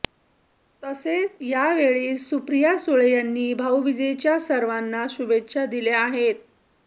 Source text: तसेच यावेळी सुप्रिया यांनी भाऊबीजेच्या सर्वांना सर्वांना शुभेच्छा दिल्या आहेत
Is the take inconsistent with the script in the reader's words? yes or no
yes